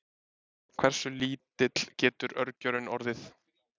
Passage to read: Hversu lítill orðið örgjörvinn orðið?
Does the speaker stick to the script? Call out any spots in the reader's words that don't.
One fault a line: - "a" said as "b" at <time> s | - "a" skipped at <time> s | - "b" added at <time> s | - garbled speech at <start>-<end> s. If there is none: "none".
- "orðið" said as "getur" at 2.0 s